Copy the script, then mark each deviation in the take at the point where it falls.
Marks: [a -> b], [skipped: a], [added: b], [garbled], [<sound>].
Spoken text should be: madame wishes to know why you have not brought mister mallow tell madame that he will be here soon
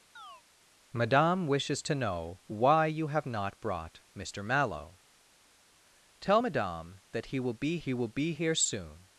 [chirp] madame wishes to know why you have not brought mister mallow tell madame that he will be [added: he will be] here soon